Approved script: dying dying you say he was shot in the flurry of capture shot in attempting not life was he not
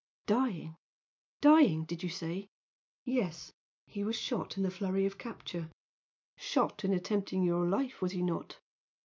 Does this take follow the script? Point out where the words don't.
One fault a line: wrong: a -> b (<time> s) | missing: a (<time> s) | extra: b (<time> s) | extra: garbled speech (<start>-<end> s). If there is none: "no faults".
extra: did (1.8 s)
extra: yes (3.0 s)
wrong: not -> your (7.4 s)